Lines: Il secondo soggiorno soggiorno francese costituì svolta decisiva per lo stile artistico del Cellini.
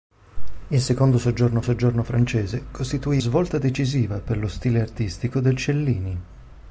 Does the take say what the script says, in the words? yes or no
yes